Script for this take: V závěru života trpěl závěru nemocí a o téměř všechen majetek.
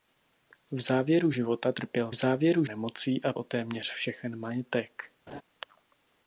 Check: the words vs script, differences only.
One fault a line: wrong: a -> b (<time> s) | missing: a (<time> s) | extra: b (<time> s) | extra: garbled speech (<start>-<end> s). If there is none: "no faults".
no faults